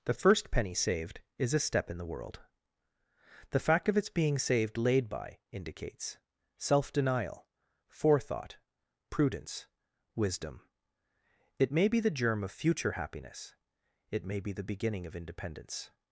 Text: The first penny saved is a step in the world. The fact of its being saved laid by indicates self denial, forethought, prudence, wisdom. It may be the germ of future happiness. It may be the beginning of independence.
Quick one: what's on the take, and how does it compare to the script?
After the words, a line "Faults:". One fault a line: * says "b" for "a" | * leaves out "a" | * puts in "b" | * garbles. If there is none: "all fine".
The first penny saved is a step in the world. The fact of its being saved laid by indicates self denial, forethought, prudence, wisdom. It may be the germ of future happiness. It may be the beginning of independence.
Faults:
all fine